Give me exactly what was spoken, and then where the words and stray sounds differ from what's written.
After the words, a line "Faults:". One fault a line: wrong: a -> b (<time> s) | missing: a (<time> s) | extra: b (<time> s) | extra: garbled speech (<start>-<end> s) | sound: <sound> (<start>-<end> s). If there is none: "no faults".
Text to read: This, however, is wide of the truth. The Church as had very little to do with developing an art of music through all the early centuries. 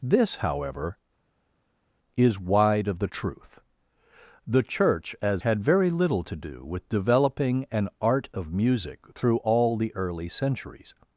This, however, is wide of the truth. The Church as had very little to do with developing an art of music through all the early centuries.
Faults:
no faults